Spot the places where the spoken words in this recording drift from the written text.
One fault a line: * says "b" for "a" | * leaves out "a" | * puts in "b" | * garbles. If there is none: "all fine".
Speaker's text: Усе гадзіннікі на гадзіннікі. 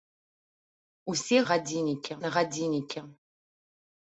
all fine